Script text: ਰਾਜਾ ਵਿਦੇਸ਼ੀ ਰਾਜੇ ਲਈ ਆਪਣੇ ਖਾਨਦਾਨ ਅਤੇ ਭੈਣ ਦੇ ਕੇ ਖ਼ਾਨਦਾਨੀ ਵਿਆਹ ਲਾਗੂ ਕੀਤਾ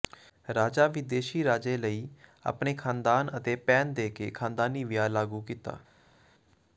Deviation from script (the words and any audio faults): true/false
false